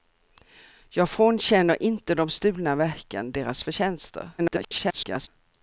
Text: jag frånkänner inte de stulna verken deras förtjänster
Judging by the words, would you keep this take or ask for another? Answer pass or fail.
fail